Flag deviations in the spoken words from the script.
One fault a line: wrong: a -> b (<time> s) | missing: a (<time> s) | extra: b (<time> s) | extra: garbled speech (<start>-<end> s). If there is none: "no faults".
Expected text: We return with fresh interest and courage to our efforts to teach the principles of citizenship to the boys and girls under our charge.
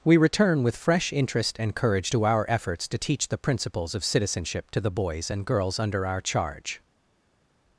no faults